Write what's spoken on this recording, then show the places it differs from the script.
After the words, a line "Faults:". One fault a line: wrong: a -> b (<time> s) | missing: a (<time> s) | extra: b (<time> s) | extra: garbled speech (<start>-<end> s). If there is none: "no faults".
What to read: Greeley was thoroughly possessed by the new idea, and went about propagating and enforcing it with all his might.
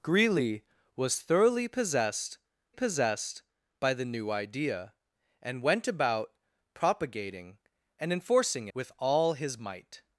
Greeley was thoroughly possessed possessed by the new idea, and went about propagating and enforcing with all his might.
Faults:
extra: possessed (2.7 s)
missing: it (8.7 s)